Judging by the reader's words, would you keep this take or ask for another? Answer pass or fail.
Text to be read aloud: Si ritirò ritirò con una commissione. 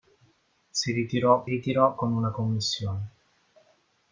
pass